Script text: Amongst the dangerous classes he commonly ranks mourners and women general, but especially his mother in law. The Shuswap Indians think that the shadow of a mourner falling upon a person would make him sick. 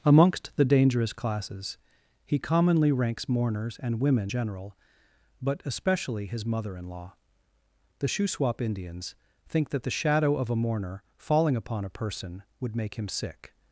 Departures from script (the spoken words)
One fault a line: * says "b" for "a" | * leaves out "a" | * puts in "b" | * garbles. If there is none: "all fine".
all fine